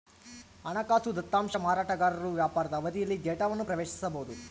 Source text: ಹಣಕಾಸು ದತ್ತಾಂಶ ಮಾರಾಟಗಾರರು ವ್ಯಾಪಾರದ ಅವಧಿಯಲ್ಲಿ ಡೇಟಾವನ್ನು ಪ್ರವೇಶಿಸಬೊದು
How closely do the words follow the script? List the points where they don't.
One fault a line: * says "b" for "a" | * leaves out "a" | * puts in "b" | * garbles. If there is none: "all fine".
all fine